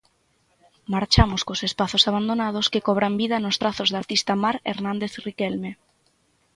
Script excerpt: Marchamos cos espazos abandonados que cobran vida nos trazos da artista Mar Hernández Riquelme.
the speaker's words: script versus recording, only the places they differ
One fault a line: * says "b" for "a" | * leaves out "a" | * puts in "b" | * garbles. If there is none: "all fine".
all fine